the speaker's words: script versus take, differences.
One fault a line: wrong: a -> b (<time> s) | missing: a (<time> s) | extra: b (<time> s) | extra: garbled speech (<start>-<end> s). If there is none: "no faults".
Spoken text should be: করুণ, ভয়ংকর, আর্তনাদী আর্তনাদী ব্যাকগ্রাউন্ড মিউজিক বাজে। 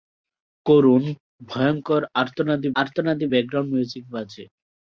no faults